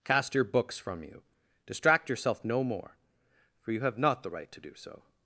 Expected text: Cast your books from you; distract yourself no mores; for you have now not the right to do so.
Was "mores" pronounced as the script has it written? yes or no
no